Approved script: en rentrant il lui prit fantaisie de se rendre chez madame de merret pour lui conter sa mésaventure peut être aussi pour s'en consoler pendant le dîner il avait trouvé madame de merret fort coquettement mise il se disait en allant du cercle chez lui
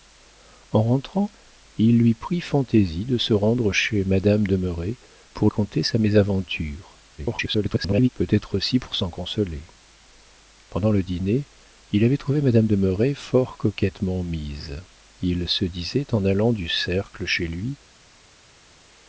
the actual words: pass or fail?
fail